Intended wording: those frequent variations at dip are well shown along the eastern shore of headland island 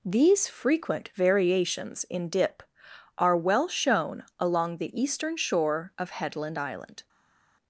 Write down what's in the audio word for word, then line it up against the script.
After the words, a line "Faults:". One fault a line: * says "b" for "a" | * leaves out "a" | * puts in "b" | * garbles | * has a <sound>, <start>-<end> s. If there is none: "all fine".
these frequent variations in dip are well shown along the eastern shore of headland island
Faults:
* says "these" for "those"
* says "in" for "at"